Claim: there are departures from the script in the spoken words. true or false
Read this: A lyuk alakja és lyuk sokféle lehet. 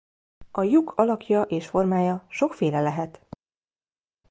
true